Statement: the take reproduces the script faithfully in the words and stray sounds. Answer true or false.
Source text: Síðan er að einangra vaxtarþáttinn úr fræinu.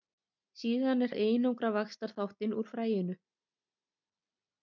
true